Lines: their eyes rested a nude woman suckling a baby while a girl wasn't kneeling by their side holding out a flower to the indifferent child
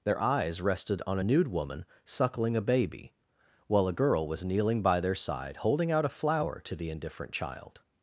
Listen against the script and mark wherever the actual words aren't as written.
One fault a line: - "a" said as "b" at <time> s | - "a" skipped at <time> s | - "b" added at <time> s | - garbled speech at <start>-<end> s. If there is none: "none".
- "on" added at 1.1 s
- "wasn't" said as "was" at 4.3 s